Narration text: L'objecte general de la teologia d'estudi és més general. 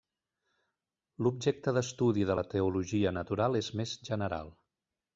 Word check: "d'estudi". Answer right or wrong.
wrong